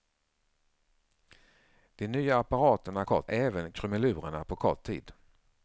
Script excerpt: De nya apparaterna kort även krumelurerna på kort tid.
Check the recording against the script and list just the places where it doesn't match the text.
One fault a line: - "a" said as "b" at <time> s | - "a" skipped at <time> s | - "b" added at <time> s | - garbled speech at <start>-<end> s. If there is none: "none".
none